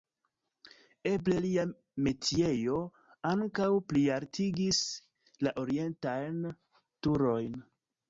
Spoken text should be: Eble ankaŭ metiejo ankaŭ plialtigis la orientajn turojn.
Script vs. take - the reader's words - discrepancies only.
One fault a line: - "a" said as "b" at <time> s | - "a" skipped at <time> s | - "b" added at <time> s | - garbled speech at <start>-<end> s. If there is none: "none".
- "ankaŭ" said as "lia" at 1.4 s